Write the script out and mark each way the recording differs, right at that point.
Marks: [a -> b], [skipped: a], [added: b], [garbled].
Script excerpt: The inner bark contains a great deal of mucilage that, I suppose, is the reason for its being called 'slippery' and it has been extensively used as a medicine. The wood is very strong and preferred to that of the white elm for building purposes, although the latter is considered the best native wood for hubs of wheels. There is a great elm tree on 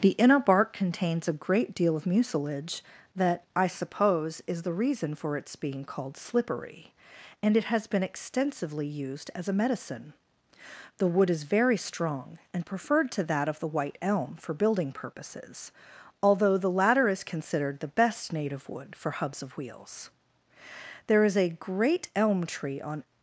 The inner bark contains a great deal of mucilage that, I suppose, is the reason for its being called 'slippery' and it has been extensively used as a medicine. The wood is very strong and preferred to that of the white elm for building purposes, although the latter is considered the best native wood for hubs of wheels. There is a great elm tree on